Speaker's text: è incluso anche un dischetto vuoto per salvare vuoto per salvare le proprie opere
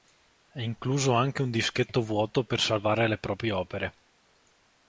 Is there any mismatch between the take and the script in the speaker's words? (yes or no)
yes